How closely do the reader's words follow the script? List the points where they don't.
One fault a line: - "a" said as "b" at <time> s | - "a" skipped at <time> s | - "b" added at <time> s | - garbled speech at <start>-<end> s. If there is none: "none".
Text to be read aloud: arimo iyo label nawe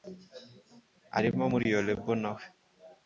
- "muri" added at 1.5 s